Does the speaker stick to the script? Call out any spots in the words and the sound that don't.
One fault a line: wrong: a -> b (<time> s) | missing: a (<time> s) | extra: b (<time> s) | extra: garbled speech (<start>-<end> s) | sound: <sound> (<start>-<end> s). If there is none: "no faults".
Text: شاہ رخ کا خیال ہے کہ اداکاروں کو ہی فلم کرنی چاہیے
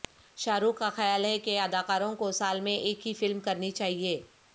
extra: سال میں ایک (2.3 s)